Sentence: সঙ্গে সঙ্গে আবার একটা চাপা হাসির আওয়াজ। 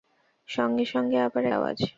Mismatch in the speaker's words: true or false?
true